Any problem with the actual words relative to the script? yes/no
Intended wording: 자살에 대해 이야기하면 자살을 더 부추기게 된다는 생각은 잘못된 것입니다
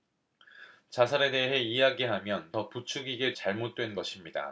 yes